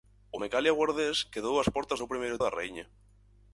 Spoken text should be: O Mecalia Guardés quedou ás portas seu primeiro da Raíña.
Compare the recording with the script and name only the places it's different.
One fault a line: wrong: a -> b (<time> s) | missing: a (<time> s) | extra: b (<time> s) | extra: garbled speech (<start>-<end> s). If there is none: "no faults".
no faults